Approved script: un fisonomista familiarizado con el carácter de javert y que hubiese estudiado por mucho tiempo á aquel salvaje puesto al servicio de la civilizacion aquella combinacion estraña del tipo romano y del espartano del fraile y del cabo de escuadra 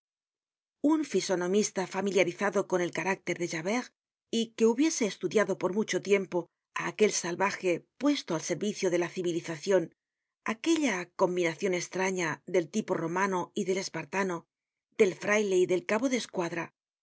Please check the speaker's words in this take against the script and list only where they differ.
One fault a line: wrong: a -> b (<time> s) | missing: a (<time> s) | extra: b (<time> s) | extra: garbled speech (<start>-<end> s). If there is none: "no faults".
no faults